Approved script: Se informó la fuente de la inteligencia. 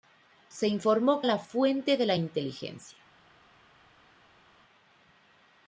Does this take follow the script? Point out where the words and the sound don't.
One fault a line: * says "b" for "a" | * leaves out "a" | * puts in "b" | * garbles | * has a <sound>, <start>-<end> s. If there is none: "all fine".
all fine